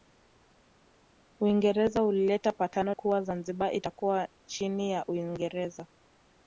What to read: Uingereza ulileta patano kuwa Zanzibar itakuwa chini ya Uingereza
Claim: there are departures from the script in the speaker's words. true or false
false